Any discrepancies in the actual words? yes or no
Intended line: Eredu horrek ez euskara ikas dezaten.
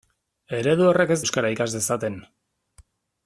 no